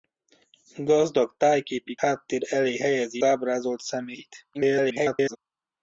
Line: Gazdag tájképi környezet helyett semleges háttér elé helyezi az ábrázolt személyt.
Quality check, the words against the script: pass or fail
fail